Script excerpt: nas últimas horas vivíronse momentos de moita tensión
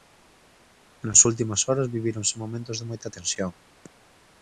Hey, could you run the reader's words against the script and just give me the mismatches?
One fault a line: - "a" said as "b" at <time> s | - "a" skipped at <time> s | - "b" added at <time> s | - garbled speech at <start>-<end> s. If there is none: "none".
none